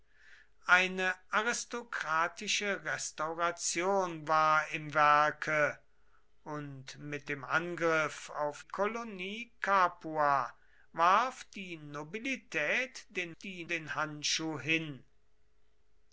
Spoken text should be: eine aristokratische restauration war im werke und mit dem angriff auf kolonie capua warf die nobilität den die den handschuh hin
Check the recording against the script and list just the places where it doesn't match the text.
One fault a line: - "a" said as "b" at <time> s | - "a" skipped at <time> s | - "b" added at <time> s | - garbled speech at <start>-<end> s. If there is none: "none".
none